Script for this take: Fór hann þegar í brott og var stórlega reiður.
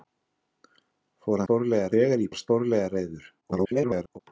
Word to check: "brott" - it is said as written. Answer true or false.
false